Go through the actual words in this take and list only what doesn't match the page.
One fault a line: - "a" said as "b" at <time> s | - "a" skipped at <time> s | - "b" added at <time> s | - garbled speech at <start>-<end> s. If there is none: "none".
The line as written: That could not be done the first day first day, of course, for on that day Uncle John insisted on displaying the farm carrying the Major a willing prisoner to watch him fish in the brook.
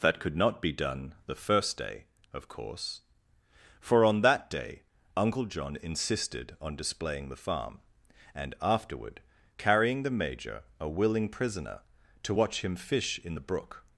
- "first day" skipped at 2.0 s
- "and afterward" added at 8.3 s